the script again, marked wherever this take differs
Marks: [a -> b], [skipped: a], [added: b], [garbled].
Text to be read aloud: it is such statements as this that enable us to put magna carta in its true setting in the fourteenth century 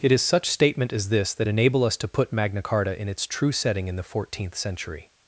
it is such [statements -> statement] as this that enable us to put magna carta in its true setting in the fourteenth century